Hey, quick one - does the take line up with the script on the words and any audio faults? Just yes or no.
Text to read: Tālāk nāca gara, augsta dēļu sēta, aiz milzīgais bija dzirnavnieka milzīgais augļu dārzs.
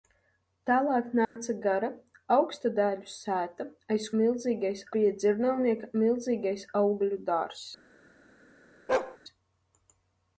no